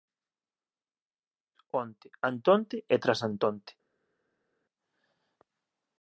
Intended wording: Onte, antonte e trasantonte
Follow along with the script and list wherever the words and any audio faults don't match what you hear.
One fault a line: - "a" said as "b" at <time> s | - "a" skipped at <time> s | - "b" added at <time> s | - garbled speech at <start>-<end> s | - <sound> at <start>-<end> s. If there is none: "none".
none